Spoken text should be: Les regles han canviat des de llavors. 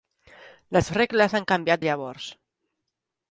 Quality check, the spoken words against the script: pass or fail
fail